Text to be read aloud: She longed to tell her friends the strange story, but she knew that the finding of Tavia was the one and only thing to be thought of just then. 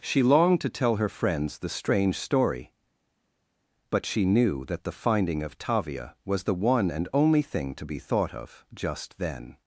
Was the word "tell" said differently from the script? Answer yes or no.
no